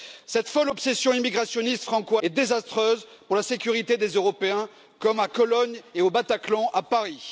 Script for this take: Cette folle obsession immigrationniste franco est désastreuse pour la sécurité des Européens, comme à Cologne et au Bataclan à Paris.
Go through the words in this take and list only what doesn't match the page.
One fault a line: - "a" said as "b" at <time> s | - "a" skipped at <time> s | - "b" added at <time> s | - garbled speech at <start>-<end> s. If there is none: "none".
none